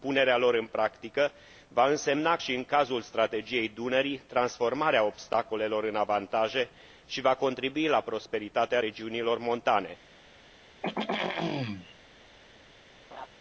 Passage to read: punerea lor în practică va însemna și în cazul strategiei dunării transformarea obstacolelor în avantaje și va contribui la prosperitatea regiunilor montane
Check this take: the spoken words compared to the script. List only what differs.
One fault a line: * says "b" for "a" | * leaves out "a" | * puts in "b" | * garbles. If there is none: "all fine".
all fine